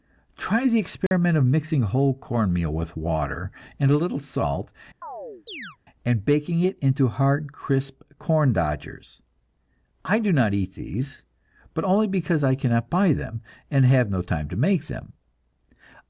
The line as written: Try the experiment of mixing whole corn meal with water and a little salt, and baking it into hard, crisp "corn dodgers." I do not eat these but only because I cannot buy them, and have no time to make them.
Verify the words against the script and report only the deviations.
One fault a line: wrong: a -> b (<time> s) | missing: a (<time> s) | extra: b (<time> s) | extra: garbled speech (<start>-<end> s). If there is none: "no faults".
no faults